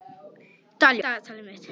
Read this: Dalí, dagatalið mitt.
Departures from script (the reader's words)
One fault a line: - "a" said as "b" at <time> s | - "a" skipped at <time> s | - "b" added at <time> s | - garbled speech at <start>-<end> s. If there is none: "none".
none